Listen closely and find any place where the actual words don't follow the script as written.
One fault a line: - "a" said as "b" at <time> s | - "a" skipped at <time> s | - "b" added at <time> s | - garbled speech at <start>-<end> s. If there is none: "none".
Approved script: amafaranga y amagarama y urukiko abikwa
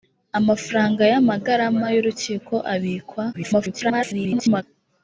- garbled speech at 3.3-4.6 s